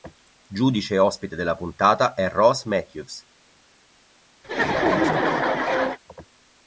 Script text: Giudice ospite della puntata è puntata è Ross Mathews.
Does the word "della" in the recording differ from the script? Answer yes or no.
no